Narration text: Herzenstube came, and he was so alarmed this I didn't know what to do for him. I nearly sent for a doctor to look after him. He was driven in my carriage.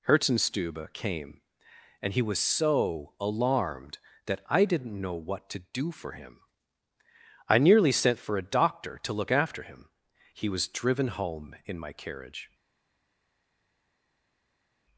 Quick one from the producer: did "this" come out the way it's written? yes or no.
no